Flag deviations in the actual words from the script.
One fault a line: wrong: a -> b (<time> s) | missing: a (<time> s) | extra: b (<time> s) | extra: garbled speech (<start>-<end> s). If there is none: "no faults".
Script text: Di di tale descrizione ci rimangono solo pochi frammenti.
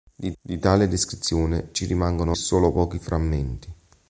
no faults